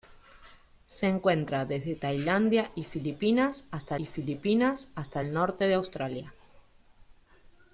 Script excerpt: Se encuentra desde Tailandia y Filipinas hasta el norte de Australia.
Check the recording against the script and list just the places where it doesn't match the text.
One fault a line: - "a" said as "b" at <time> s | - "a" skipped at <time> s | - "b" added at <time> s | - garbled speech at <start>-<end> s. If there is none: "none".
- "y Filipinas hasta" added at 3.9 s